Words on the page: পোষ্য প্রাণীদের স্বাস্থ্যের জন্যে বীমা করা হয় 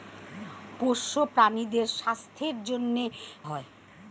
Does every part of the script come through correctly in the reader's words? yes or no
no